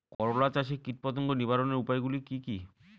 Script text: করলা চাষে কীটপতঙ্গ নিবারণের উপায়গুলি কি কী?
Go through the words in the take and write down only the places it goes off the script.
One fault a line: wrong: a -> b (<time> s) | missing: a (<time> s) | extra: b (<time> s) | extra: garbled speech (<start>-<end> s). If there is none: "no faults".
no faults